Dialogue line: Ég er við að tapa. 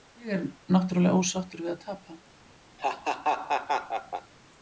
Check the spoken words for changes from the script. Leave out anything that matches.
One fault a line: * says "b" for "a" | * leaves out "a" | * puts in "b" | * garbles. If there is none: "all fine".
* puts in "náttúrulega ósáttur"